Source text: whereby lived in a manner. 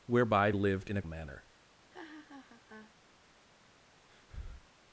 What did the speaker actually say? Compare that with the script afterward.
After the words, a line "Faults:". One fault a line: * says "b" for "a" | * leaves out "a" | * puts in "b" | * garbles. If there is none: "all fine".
whereby lived in a manner.
Faults:
all fine